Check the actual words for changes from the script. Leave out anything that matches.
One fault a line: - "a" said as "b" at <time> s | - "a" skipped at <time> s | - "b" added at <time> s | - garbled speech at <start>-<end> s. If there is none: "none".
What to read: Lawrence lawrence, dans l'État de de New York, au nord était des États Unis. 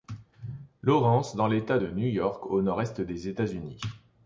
- "lawrence" skipped at 1.4 s
- "de" skipped at 1.9 s
- "était" said as "est" at 2.8 s